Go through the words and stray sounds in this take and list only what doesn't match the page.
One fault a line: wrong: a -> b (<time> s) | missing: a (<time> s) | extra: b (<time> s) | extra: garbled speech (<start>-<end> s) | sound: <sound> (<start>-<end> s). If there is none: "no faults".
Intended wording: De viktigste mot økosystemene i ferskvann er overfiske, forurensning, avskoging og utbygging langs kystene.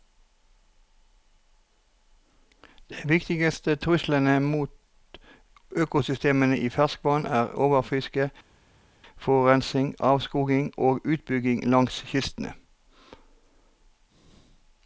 extra: truslene (3.8 s)